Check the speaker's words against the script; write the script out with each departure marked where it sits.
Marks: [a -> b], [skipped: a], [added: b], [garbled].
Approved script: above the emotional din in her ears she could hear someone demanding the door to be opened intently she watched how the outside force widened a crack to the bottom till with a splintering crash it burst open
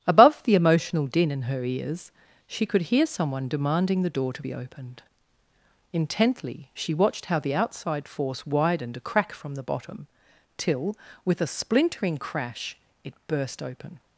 above the emotional din in her ears she could hear someone demanding the door to be opened intently she watched how the outside force widened a crack [to -> from] the bottom till with a splintering crash it burst open